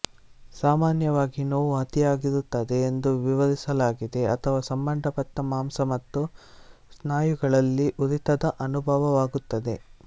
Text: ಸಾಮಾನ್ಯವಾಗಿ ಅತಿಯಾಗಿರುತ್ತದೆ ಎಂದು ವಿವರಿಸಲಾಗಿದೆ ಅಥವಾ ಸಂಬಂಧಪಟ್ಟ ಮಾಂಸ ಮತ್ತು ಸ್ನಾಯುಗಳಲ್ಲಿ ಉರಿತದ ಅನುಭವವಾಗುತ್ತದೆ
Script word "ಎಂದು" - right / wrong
right